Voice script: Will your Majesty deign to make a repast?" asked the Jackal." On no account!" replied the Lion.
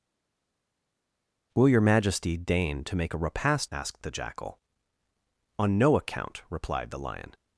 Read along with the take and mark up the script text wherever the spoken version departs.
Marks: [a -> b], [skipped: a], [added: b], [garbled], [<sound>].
Will your Majesty deign to make a repast?" asked the Jackal." On no account!" replied the Lion.